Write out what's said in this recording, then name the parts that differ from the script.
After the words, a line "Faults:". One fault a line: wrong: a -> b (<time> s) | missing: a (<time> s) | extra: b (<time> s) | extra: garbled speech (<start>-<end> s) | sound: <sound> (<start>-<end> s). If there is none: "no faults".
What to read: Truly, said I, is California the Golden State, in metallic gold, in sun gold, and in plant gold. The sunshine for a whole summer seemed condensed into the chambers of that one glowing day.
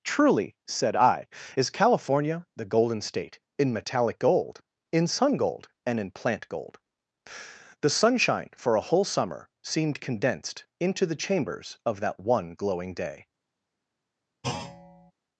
Truly, said I, is California the Golden State, in metallic gold, in sun gold, and in plant gold. The sunshine for a whole summer seemed condensed into the chambers of that one glowing day.
Faults:
sound: thud (14.4-15.1 s)